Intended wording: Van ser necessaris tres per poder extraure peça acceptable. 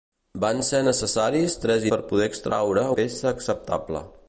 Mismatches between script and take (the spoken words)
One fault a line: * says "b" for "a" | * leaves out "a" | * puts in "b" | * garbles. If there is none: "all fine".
all fine